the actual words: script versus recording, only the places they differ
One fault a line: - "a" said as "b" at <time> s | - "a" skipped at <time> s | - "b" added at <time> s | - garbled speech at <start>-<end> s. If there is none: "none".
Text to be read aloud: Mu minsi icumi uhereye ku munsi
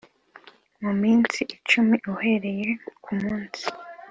none